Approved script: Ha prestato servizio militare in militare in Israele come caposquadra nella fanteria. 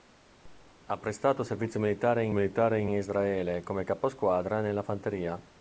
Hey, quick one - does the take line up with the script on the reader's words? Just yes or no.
yes